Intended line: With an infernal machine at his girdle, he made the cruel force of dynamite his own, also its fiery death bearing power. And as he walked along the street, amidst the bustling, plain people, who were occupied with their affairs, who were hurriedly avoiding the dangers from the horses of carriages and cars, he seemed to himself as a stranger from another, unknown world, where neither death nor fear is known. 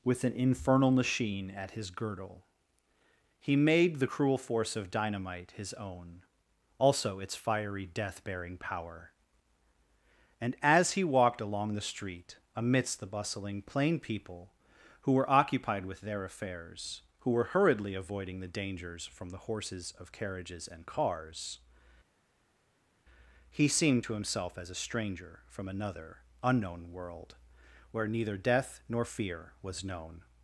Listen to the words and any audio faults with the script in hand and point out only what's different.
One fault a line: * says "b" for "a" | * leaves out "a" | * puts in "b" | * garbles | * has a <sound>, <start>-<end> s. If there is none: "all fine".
* says "was" for "is"